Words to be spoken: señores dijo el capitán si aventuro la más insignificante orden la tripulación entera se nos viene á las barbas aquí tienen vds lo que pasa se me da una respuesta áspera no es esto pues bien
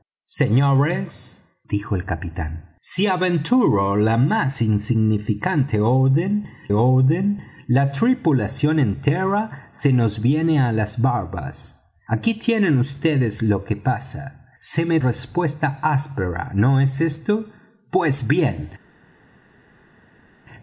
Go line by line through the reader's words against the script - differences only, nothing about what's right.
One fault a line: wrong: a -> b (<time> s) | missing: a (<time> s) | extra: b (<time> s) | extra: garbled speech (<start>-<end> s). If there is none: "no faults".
extra: orden (6.7 s)
missing: da una (15.0 s)